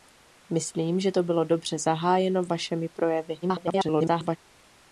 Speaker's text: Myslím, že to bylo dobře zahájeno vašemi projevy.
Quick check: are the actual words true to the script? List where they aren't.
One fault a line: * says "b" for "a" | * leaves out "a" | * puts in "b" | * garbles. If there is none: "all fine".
* garbles